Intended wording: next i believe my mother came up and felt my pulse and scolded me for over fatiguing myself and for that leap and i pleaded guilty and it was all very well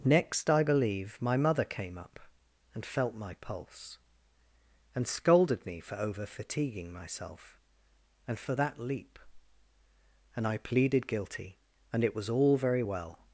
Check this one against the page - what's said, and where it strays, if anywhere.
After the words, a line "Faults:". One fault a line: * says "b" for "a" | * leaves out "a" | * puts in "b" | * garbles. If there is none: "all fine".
next i believe my mother came up and felt my pulse and scolded me for over fatiguing myself and for that leap and i pleaded guilty and it was all very well
Faults:
all fine